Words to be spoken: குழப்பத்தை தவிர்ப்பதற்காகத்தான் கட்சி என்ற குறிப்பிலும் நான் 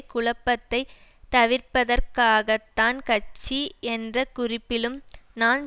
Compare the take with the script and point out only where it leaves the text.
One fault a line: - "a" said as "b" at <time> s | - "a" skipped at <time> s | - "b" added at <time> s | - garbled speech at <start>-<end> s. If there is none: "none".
none